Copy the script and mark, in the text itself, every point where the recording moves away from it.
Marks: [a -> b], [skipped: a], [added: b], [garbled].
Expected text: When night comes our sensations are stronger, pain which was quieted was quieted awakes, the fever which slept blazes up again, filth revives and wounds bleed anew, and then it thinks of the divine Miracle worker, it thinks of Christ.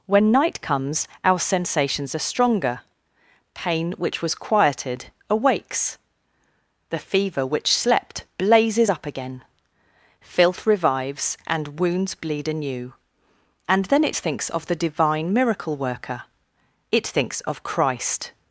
When night comes our sensations are stronger, pain which was quieted [skipped: was quieted] awakes, the fever which slept blazes up again, filth revives and wounds bleed anew, and then it thinks of the divine Miracle worker, it thinks of Christ.